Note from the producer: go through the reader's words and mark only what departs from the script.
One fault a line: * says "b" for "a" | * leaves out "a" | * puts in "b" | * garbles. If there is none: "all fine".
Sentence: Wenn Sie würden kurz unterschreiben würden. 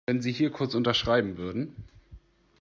* says "hier" for "würden"